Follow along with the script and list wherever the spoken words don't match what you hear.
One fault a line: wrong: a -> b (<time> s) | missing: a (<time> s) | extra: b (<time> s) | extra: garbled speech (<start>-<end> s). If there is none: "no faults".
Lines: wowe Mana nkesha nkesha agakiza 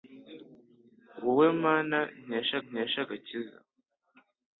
no faults